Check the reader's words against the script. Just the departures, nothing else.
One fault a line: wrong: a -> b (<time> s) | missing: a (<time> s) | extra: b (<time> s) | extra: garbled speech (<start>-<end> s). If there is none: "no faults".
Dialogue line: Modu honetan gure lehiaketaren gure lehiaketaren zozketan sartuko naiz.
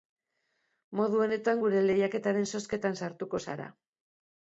missing: gure lehiaketaren (2.5 s)
wrong: naiz -> zara (3.5 s)